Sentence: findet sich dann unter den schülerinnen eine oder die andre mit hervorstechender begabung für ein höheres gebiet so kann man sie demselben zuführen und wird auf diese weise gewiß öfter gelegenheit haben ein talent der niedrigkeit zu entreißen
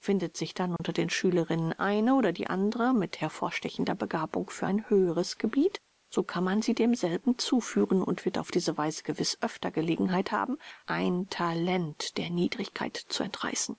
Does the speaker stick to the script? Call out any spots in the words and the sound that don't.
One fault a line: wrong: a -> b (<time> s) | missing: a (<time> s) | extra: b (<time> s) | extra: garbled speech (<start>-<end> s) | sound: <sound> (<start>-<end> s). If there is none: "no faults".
sound: dropout (0.8-0.8 s)